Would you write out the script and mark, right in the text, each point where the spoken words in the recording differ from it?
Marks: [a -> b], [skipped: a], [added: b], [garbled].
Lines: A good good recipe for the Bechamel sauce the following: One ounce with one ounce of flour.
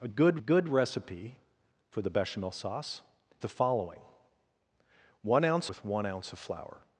A good good recipe for the Bechamel sauce the following: One ounce with one ounce of flour.